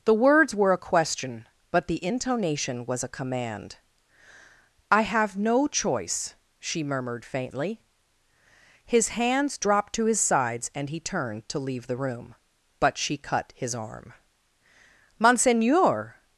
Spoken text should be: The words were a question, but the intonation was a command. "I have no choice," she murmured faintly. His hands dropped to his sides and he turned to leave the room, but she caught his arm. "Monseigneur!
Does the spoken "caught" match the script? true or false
false